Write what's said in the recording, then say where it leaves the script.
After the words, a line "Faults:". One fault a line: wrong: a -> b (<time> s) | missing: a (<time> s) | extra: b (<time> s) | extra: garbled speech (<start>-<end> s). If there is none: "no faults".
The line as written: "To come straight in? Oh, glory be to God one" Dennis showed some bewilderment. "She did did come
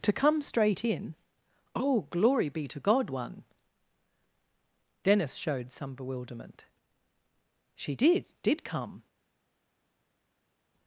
"To come straight in? Oh, glory be to God one" Dennis showed some bewilderment. "She did did come
Faults:
no faults